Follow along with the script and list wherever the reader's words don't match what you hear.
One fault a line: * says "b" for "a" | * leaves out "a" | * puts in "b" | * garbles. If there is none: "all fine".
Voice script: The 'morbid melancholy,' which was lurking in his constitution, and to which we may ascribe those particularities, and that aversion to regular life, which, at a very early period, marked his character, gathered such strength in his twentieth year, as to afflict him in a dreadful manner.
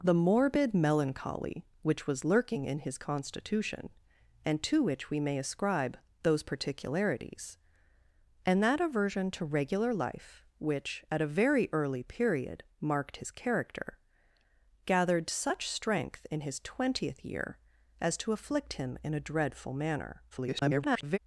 * garbles